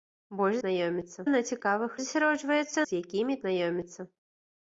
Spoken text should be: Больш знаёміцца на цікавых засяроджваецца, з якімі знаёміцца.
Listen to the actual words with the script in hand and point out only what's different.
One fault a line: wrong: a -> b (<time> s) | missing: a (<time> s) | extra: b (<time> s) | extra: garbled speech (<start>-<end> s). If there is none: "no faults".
no faults